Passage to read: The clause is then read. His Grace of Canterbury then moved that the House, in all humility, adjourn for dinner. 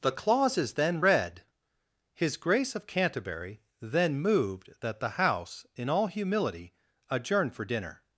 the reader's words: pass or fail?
pass